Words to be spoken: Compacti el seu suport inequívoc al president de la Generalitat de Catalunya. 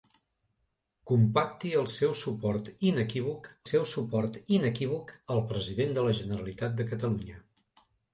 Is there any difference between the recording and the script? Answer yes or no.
yes